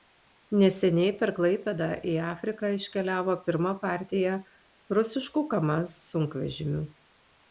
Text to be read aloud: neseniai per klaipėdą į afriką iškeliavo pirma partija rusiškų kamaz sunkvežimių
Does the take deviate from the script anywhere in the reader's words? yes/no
no